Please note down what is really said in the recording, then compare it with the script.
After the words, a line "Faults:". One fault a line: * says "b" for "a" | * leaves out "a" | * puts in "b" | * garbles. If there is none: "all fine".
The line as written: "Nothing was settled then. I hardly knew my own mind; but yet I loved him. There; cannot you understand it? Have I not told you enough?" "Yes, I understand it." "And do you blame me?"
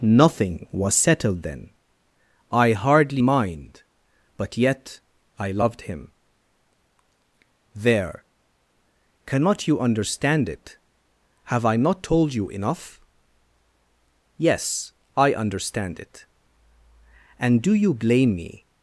"Nothing was settled then. I hardly mind; but yet I loved him. There; cannot you understand it? Have I not told you enough?" "Yes, I understand it." "And do you blame me?"
Faults:
* leaves out "knew my own"